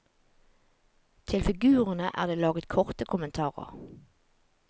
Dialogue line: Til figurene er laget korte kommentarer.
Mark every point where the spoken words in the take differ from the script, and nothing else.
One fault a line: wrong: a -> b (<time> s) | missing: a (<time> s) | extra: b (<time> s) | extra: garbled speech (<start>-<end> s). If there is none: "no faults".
extra: det (2.3 s)